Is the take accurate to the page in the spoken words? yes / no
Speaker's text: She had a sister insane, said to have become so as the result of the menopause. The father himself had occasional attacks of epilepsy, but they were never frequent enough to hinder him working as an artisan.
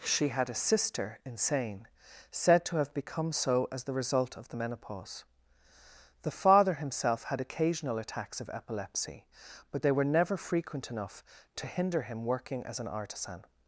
yes